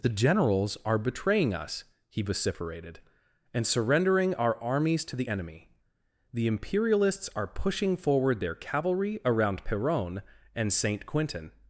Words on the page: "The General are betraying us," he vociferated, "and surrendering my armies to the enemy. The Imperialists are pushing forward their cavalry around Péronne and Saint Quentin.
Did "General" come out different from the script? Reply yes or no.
yes